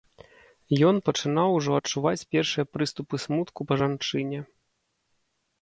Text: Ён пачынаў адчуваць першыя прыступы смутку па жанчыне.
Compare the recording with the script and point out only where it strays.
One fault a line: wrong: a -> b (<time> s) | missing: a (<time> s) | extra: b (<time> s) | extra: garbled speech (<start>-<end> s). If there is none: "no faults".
extra: ужо (1.6 s)